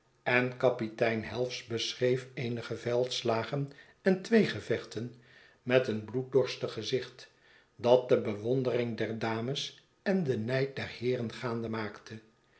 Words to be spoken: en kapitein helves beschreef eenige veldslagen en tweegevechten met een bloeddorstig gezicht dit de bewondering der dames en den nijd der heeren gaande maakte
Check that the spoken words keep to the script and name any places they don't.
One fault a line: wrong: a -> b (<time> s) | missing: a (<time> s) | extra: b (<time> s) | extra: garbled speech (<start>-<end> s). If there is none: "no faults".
wrong: dit -> dat (7.8 s)